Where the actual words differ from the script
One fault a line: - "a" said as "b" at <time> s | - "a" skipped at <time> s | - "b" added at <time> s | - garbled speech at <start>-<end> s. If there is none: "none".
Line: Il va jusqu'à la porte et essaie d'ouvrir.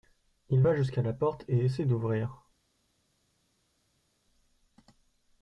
none